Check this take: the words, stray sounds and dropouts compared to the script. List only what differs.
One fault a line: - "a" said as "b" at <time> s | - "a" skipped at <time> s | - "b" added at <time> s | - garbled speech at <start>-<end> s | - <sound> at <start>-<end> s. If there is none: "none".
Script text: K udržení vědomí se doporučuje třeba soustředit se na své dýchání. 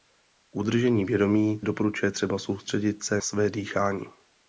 - "se" skipped at 1.6 s
- "na" skipped at 3.2 s